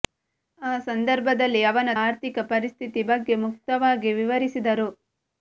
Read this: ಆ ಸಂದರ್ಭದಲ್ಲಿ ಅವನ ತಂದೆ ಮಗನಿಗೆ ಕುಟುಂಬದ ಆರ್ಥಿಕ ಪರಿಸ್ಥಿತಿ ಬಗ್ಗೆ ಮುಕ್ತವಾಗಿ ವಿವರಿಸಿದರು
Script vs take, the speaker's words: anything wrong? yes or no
yes